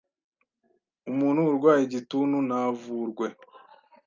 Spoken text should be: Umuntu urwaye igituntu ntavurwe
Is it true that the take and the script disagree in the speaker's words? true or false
false